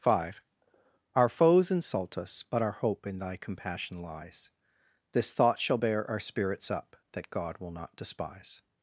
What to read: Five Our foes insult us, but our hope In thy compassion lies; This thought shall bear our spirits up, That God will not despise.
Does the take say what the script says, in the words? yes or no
yes